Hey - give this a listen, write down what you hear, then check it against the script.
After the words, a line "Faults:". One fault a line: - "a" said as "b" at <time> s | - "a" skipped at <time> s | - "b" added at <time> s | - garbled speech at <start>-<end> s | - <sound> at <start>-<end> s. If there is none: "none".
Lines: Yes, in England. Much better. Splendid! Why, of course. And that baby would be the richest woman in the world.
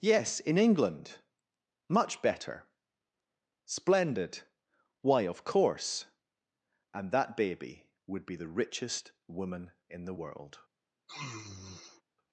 Yes, in England. Much better. Splendid! Why, of course. And that baby would be the richest woman in the world.
Faults:
- sniff at 11.1-12.0 s